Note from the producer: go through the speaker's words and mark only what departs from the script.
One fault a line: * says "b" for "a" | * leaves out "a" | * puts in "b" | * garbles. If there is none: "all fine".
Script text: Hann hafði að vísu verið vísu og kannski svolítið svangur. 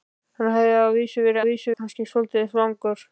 all fine